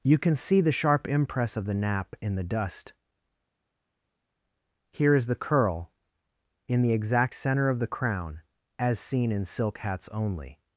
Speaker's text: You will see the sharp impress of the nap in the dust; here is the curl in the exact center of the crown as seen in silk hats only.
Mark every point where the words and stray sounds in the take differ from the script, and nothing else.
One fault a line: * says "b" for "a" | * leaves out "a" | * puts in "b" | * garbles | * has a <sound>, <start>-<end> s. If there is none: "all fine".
* says "can" for "will"